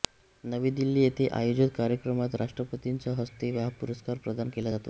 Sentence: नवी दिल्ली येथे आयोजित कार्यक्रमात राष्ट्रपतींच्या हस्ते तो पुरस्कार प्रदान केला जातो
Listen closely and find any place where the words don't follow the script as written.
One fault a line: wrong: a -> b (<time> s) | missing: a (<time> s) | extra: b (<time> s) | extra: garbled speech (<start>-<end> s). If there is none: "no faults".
wrong: तो -> हा (3.6 s)